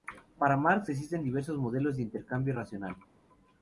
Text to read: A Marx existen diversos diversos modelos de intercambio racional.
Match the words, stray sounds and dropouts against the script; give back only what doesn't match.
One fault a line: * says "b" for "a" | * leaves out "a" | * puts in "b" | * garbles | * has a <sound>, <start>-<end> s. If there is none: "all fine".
* says "Para" for "A"
* leaves out "diversos"